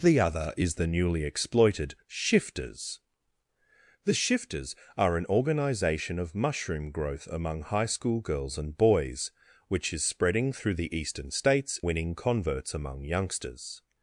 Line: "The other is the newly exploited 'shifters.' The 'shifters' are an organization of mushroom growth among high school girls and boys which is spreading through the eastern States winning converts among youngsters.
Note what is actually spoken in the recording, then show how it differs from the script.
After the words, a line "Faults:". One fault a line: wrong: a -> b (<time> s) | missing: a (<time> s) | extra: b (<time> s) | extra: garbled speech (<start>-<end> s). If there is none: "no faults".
"The other is the newly exploited 'shifters.' The 'shifters' are an organization of mushroom growth among high school girls and boys which is spreading through the eastern States winning converts among youngsters.
Faults:
no faults